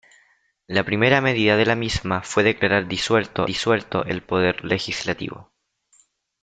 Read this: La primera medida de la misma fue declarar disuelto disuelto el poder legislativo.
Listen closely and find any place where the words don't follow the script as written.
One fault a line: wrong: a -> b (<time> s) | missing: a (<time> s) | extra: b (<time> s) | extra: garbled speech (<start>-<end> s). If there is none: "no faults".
no faults